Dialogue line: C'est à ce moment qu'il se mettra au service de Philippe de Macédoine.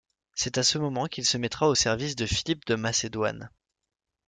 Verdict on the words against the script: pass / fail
pass